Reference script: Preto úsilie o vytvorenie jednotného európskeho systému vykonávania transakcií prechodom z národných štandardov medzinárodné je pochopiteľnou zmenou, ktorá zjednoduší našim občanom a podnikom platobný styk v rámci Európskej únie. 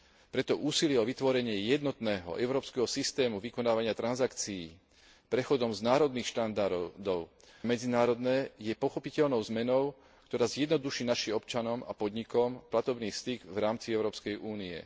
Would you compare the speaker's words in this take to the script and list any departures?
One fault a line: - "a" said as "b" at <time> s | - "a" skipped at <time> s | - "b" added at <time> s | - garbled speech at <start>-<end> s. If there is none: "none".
none